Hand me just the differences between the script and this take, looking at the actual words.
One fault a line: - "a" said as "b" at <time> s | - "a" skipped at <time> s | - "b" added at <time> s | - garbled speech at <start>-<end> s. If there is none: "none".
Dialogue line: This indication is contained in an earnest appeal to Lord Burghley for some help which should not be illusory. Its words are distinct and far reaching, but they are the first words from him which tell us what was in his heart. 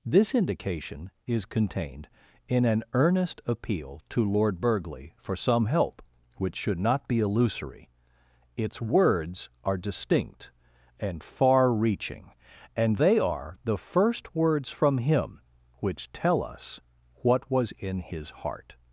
- "but" said as "and" at 12.8 s